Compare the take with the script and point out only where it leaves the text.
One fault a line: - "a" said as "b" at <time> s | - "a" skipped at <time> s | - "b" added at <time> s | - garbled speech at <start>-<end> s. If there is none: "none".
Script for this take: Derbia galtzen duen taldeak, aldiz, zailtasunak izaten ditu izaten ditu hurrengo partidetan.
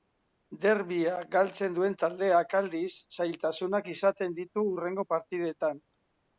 - "izaten ditu" skipped at 4.7 s